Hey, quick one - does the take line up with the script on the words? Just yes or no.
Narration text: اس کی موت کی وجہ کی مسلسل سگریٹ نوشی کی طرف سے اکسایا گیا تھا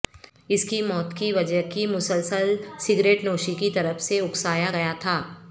yes